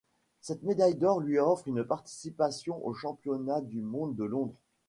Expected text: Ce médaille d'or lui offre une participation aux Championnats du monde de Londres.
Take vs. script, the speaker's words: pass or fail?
fail